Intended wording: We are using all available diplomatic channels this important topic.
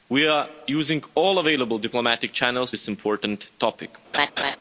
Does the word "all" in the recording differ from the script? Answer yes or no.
no